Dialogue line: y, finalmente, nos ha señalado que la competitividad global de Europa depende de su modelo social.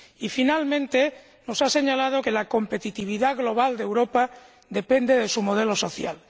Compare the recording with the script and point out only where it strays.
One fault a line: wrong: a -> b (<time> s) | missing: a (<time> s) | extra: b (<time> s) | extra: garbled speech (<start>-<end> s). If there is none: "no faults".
no faults